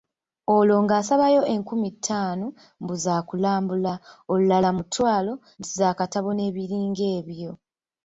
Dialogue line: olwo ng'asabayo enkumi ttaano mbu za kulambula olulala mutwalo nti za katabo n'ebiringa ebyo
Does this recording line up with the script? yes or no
yes